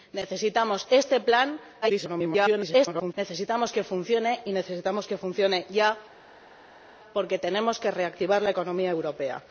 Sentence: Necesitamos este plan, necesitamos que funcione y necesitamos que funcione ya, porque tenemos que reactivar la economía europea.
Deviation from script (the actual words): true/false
true